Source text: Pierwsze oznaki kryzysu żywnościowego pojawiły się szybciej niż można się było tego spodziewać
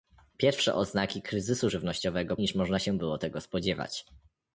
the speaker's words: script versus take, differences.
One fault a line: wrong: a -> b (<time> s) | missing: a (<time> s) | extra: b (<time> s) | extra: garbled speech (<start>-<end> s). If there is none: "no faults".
missing: pojawiły się szybciej (2.4 s)